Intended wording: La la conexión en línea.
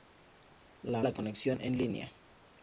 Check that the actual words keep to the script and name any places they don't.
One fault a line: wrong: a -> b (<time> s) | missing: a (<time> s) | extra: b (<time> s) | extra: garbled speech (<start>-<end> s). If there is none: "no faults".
no faults